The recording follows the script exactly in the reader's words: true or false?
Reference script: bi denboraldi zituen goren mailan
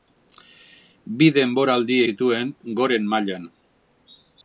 true